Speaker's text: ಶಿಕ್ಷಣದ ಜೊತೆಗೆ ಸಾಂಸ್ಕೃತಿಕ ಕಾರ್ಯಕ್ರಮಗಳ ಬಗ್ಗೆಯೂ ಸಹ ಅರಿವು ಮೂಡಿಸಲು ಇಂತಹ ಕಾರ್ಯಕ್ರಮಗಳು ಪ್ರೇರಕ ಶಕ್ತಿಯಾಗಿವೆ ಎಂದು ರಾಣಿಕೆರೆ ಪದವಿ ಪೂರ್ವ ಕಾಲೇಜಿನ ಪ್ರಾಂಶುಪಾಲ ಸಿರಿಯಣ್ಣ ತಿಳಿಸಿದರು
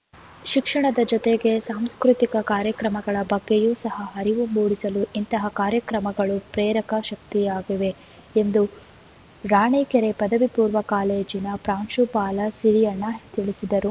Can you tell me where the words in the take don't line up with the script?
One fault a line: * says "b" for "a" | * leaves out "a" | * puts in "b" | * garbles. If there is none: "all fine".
all fine